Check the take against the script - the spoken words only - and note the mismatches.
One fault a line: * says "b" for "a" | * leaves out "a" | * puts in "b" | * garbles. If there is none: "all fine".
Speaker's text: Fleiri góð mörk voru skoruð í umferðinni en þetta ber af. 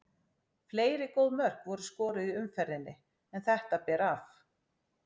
all fine